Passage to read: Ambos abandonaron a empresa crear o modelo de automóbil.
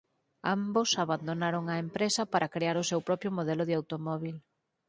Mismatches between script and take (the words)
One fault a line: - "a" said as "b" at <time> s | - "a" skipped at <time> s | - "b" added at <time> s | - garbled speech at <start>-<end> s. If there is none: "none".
- "para" added at 2.3 s
- "seu propio" added at 2.9 s